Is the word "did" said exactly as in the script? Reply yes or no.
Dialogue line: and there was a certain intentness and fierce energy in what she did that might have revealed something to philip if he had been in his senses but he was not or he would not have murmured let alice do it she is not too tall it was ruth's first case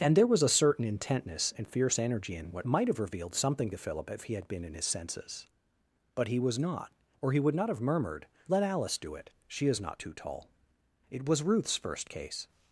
no